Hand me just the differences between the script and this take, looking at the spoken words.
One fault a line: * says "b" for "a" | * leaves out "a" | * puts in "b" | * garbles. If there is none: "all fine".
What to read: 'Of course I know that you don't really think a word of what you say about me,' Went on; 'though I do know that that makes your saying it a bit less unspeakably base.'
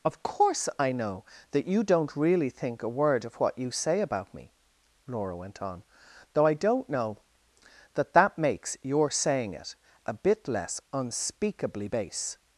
* puts in "Laura"
* says "don't" for "do"